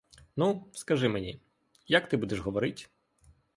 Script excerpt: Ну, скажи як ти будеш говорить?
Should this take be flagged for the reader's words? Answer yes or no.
yes